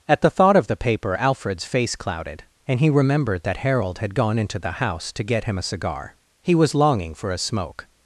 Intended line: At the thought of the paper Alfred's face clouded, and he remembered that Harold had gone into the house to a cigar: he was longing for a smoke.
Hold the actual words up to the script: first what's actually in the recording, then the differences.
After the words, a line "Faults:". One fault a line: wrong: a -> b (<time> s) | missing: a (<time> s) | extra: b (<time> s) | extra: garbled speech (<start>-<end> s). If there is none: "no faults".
At the thought of the paper Alfred's face clouded, and he remembered that Harold had gone into the house to get him a cigar: he was longing for a smoke.
Faults:
extra: get him (5.2 s)